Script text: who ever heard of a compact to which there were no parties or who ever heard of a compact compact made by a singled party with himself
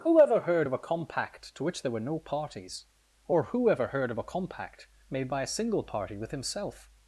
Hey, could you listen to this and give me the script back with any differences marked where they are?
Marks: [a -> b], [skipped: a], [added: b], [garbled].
who ever heard of a compact to which there were no parties or who ever heard of a compact [skipped: compact] made by a [singled -> single] party with himself